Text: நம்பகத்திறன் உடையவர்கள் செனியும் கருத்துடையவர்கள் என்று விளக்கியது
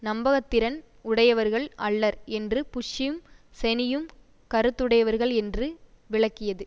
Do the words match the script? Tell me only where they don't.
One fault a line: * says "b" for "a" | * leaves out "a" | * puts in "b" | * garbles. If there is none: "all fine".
* puts in "அல்லர் என்று புஷ்ஷும்"